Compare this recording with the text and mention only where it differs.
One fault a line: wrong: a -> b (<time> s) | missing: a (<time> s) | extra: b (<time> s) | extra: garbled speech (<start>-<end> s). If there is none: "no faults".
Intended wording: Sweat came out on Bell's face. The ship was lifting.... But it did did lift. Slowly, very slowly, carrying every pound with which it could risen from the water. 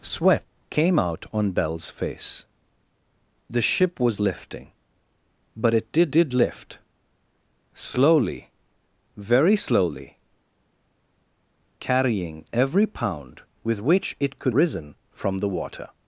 no faults